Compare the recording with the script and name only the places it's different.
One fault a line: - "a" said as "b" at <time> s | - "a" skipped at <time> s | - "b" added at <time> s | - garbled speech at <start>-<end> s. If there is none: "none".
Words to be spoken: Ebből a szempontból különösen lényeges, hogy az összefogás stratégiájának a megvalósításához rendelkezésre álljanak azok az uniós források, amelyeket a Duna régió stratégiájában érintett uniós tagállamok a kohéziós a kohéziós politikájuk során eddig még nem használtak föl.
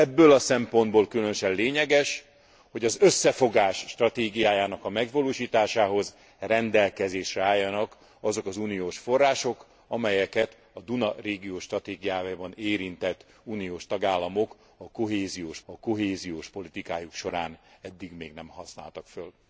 none